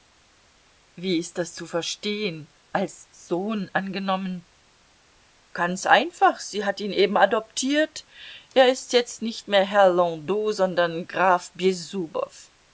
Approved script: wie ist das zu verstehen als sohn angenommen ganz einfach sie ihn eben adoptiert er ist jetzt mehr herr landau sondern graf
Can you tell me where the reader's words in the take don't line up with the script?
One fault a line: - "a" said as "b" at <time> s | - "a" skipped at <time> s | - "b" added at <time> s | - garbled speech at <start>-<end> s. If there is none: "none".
- "hat" added at 6.7 s
- "nicht" added at 9.2 s